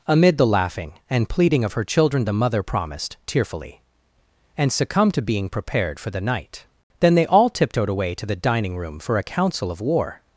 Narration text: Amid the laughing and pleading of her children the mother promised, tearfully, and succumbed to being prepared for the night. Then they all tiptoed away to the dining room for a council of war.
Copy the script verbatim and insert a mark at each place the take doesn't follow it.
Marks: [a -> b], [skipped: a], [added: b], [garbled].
Amid the laughing and pleading of her children the mother promised, tearfully, and succumbed to being prepared for the night. Then they all tiptoed away to the dining room for a council of war.